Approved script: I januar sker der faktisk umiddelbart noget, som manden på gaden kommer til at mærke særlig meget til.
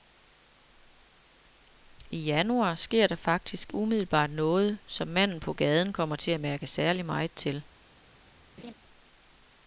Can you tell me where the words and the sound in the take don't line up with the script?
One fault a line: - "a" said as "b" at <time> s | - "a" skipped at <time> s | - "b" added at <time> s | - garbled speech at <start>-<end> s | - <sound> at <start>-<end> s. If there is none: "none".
- laugh at 8.6-8.7 s